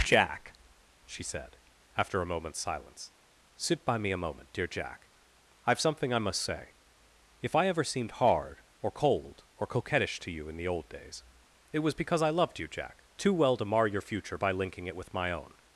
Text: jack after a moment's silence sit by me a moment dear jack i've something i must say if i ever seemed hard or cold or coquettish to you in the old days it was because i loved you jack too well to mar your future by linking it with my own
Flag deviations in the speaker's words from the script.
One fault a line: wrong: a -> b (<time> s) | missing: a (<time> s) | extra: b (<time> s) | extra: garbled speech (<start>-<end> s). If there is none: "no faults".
extra: she said (1.1 s)